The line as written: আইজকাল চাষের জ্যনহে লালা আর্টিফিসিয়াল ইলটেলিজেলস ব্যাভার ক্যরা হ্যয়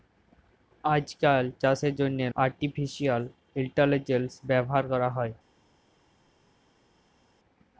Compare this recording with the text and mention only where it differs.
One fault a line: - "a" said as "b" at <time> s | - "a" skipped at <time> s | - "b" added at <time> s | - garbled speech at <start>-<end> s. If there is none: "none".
- "লালা" skipped at 2.3 s